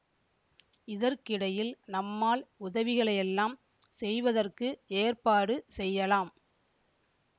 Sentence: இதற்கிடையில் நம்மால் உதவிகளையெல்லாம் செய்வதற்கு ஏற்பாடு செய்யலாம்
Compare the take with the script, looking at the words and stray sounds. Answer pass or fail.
pass